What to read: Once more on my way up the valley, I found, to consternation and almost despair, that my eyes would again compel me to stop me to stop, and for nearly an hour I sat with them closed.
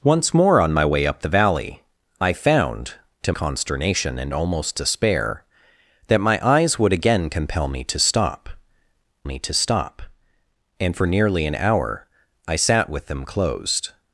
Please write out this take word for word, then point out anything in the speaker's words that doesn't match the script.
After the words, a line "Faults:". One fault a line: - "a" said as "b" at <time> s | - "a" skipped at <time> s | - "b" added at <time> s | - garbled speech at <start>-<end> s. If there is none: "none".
Once more on my way up the valley, I found, to consternation and almost despair, that my eyes would again compel me to stop me to stop, and for nearly an hour I sat with them closed.
Faults:
none